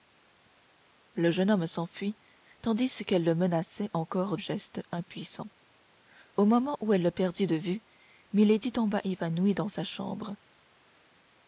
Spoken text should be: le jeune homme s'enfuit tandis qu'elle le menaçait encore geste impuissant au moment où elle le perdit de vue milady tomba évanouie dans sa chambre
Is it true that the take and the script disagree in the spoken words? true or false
false